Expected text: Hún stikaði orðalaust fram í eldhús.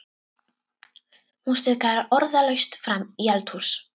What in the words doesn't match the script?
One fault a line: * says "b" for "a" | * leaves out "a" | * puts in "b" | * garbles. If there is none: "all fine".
all fine